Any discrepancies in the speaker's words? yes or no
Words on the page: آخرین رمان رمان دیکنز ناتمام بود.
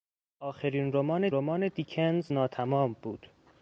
no